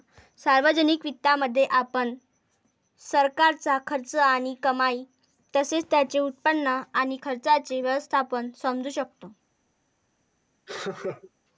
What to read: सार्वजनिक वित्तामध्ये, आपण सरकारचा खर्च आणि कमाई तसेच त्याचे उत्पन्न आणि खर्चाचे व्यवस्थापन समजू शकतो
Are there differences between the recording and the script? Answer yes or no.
no